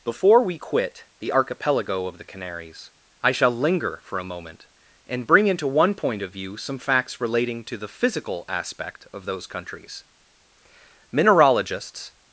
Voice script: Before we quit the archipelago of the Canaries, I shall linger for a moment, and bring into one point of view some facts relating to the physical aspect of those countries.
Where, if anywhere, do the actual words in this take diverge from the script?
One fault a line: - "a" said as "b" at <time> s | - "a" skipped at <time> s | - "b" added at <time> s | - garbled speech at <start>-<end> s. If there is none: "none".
- "Mineralogists" added at 11.1 s